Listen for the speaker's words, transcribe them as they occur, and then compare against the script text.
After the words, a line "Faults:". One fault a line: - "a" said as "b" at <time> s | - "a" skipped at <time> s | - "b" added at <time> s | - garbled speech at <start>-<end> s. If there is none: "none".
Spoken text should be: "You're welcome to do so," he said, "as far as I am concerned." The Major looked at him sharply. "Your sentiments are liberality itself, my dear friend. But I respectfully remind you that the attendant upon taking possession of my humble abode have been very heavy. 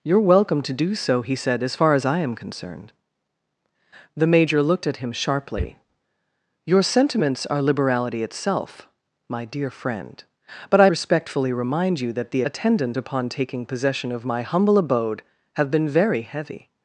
"You're welcome to do so," he said, "as far as I am concerned." The Major looked at him sharply. "Your sentiments are liberality itself, my dear friend. But I respectfully remind you that the attendant upon taking possession of my humble abode have been very heavy.
Faults:
none